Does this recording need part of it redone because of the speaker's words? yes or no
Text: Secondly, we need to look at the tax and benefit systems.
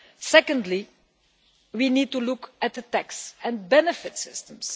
no